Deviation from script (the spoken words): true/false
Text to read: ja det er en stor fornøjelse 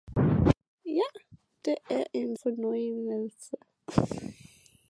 true